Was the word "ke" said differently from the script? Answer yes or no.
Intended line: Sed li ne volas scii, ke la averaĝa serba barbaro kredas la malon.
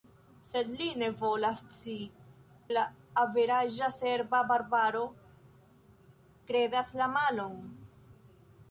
yes